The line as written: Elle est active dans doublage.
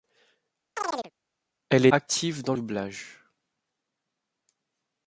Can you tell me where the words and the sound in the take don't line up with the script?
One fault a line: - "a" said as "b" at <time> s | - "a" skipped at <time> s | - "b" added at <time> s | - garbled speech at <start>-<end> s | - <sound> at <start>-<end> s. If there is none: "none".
- chirp at 0.8-1.1 s